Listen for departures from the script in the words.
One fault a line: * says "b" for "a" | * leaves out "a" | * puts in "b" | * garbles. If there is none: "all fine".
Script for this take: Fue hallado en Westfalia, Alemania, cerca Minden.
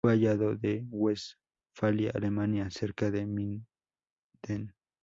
* puts in "de"